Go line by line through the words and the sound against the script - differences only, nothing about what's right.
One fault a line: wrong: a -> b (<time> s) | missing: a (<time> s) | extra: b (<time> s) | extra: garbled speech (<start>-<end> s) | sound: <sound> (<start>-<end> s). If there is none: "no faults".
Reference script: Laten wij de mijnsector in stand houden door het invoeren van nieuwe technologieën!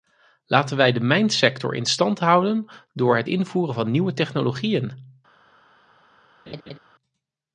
sound: laugh (6.5-6.8 s)